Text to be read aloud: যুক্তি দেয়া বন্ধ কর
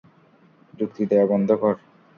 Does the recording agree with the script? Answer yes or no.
yes